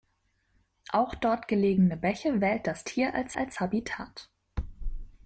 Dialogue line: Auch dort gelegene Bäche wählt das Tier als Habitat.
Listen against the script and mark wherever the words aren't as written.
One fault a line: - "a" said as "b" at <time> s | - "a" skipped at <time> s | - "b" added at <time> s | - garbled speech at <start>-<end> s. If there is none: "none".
- "als" added at 3.4 s